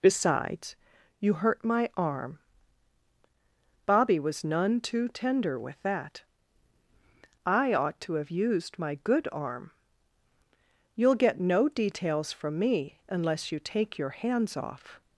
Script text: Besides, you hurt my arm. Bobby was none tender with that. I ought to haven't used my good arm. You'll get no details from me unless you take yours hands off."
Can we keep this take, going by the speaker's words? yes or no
no